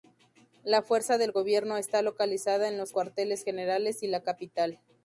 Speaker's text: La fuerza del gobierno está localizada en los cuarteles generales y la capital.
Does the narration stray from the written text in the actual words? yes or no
no